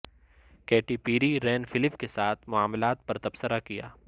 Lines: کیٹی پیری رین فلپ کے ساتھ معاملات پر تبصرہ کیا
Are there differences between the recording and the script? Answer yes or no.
no